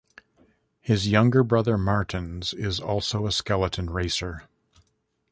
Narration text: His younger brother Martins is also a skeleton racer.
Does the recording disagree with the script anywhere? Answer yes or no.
no